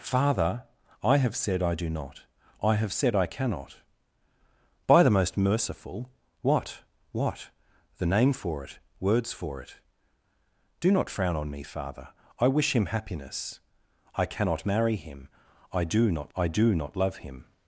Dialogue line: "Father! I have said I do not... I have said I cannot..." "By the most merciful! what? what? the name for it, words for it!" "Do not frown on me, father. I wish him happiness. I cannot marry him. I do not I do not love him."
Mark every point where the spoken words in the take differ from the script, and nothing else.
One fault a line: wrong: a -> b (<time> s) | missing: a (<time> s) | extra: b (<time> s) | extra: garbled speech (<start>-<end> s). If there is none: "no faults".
no faults